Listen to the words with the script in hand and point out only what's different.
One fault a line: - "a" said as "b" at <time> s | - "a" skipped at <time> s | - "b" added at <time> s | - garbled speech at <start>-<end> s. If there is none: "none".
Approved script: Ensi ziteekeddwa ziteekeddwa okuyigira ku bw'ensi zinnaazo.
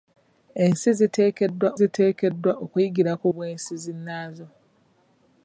none